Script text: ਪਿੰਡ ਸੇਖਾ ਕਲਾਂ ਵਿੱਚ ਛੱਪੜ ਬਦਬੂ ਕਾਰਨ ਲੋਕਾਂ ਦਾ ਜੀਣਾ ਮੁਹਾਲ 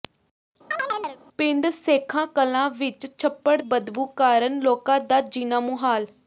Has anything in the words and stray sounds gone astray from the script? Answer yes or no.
yes